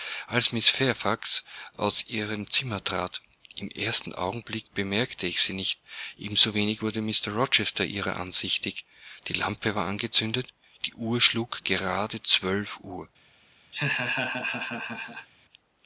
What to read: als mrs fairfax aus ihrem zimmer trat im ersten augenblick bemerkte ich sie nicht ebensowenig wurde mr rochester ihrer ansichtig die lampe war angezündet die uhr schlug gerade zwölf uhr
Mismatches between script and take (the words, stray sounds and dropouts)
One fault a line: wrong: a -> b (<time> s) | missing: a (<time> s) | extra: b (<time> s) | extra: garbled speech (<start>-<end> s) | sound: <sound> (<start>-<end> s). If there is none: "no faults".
sound: laugh (13.7-15.3 s)